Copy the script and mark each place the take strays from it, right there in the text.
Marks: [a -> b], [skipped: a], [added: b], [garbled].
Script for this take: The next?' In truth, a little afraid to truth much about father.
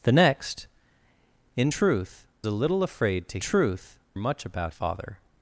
The next?' In truth, a little afraid to truth much about father.